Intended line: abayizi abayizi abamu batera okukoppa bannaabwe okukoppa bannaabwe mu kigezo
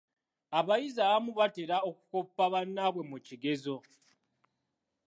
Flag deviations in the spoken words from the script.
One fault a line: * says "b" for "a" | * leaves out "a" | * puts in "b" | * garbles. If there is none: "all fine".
* leaves out "abayizi"
* leaves out "okukoppa bannaabwe"